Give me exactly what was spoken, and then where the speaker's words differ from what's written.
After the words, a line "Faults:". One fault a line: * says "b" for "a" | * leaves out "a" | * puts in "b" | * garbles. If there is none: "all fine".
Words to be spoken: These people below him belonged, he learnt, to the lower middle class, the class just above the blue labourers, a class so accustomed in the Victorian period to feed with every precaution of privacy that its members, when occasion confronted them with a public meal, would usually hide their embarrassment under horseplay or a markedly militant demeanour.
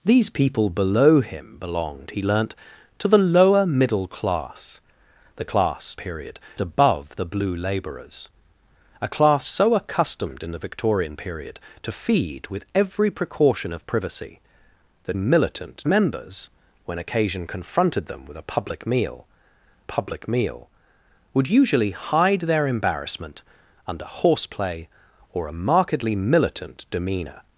These people below him belonged, he learnt, to the lower middle class, the class period above the blue labourers, a class so accustomed in the Victorian period to feed with every precaution of privacy that militant members, when occasion confronted them with a public meal public meal, would usually hide their embarrassment under horseplay or a markedly militant demeanour.
Faults:
* says "period" for "just"
* says "militant" for "its"
* puts in "public meal"